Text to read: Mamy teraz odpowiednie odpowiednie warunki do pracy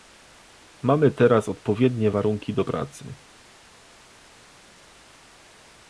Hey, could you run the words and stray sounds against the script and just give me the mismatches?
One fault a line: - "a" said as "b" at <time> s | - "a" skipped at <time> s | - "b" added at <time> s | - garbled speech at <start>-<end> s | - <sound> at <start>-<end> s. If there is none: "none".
- "odpowiednie" skipped at 2.1 s